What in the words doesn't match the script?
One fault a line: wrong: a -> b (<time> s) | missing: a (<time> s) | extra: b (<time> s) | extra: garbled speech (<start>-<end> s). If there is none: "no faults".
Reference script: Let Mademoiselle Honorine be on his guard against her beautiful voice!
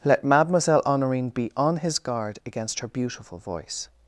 no faults